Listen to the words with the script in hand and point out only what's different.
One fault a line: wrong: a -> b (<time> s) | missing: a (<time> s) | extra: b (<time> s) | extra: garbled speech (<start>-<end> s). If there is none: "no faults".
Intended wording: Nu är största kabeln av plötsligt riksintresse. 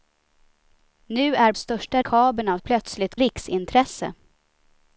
no faults